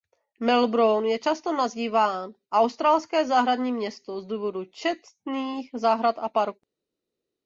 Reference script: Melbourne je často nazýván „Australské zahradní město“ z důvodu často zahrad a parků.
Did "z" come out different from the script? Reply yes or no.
no